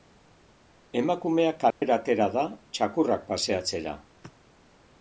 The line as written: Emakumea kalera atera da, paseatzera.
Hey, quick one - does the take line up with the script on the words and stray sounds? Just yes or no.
no